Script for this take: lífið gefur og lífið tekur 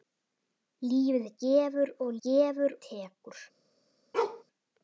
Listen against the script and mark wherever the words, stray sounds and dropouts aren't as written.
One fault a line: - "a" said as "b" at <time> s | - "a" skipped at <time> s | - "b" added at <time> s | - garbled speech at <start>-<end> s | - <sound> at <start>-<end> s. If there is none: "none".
- "lífið" said as "gefur" at 2.3 s
- bark at 4.1-4.4 s